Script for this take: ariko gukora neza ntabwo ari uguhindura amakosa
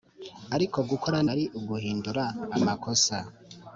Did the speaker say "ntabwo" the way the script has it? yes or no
no